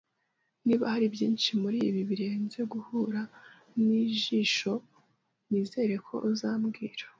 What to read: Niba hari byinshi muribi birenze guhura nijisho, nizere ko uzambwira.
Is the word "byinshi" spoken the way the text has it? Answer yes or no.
yes